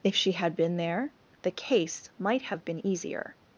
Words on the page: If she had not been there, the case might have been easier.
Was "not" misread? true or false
true